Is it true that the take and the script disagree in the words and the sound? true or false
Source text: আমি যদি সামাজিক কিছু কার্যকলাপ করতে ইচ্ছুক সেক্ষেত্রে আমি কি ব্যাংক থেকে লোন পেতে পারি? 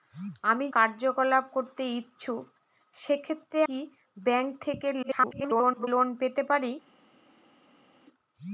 true